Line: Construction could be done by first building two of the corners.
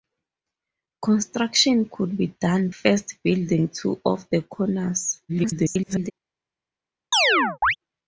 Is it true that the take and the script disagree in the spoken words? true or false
true